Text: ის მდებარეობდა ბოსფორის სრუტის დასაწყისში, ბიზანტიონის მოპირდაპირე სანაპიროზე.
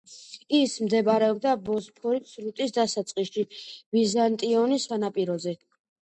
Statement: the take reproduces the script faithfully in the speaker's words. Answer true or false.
false